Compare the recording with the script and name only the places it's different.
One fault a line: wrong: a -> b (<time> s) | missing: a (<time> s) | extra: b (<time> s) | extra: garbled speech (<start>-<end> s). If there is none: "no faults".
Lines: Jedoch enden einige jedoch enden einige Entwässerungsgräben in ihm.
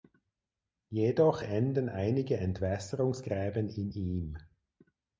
missing: jedoch enden einige (2.4 s)